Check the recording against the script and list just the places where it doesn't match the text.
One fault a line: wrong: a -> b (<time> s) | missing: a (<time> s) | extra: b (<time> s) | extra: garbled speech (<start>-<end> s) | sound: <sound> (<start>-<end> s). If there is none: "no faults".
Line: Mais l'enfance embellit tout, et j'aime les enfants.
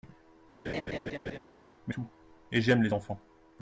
sound: laugh (0.6-1.4 s)
missing: l'enfance embellit (1.9 s)